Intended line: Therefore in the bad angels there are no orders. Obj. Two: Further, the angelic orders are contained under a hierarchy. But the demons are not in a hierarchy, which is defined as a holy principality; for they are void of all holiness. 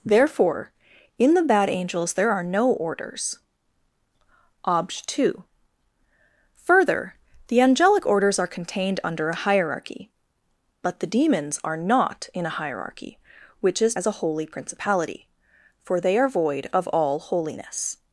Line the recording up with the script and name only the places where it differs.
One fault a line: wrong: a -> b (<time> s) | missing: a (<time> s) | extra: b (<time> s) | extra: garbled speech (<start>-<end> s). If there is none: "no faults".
missing: defined (13.9 s)